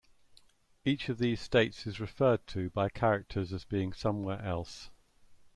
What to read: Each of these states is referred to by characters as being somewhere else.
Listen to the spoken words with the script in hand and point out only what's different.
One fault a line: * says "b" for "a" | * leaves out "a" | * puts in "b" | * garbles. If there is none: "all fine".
all fine